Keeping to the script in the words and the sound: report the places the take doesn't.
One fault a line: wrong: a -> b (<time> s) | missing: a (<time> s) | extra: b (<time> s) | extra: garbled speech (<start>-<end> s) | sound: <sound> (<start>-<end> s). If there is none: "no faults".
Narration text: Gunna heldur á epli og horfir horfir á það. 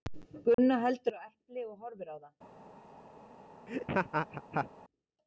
sound: dropout (0.5-0.6 s)
missing: horfir (2.1 s)
sound: laugh (3.7-4.7 s)